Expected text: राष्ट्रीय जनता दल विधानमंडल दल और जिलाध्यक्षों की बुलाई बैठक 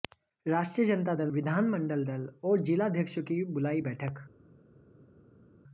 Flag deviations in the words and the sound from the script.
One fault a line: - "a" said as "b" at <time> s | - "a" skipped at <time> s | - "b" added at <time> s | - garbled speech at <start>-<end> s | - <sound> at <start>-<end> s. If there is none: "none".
none